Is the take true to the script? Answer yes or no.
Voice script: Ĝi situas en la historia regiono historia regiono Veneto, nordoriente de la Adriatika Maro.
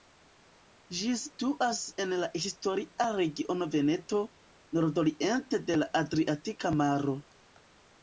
no